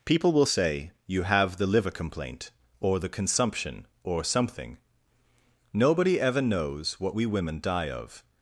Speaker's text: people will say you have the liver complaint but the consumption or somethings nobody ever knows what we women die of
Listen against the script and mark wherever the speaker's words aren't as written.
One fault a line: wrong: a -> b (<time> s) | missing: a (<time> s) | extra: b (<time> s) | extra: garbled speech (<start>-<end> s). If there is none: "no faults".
wrong: but -> or (2.8 s)
wrong: somethings -> something (4.2 s)